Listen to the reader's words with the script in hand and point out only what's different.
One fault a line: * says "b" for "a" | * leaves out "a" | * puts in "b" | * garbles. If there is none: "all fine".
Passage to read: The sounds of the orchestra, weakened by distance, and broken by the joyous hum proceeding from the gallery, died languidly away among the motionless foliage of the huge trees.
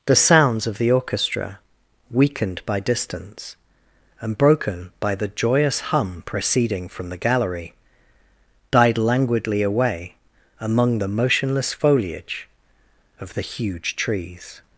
all fine